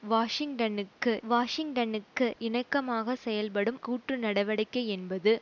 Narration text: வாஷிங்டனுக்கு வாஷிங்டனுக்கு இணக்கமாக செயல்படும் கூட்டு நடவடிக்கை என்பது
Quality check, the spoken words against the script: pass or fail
pass